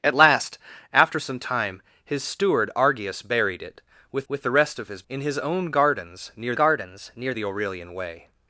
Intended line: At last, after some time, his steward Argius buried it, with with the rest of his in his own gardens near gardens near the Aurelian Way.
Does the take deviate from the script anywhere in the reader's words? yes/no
no